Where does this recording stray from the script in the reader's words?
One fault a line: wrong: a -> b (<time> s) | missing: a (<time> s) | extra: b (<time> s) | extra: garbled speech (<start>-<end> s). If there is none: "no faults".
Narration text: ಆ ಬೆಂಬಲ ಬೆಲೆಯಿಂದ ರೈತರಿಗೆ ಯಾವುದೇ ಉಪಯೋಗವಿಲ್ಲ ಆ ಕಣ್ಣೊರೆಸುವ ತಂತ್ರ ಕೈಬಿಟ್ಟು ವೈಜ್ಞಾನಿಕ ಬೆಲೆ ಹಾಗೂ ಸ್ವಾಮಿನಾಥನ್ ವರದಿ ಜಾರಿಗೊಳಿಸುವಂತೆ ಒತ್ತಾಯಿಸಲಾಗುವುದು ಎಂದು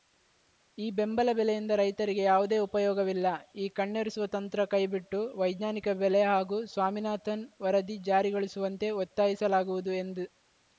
wrong: ಆ -> ಈ (0.8 s)
wrong: ಆ -> ಈ (3.5 s)